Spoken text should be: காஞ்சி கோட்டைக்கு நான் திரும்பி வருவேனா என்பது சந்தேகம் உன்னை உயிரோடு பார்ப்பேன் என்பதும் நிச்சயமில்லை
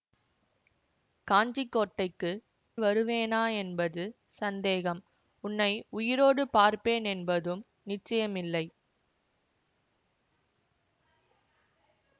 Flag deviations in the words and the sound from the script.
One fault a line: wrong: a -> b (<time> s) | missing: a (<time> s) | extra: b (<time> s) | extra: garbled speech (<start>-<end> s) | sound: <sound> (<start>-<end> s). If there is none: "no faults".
missing: நான் திரும்பி (2.3 s)